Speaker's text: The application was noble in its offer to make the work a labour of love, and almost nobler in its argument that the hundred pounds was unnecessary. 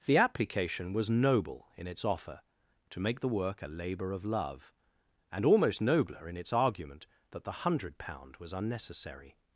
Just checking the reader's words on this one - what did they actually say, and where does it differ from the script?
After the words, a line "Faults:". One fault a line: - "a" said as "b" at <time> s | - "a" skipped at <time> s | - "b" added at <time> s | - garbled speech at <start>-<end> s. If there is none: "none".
The application was noble in its offer to make the work a labour of love, and almost nobler in its argument that the hundred pound was unnecessary.
Faults:
- "pounds" said as "pound" at 8.0 s